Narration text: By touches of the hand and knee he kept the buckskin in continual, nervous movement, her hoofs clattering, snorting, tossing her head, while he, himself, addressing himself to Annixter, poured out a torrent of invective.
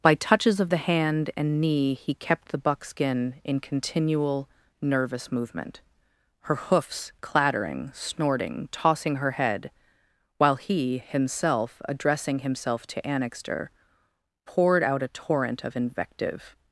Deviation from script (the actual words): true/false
false